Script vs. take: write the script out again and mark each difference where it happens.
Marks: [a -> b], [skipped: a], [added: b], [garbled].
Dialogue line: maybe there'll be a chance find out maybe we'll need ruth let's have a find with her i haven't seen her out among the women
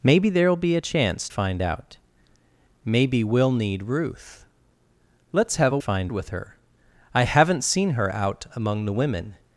maybe there'll be a chance find out maybe we'll need ruth let's have a find with her i haven't seen her out among the women